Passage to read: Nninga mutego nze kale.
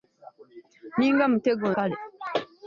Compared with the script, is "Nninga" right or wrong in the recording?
right